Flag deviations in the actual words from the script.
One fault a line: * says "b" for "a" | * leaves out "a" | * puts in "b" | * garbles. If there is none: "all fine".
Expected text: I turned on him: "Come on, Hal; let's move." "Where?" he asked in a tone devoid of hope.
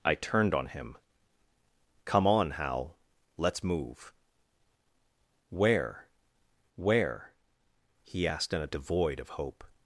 * puts in "where"
* leaves out "tone"